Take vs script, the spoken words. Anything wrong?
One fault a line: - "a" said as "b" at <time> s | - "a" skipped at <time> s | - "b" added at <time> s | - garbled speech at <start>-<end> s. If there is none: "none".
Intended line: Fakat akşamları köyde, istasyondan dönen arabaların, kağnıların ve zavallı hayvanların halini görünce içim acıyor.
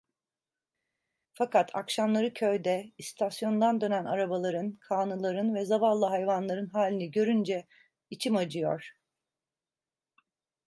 none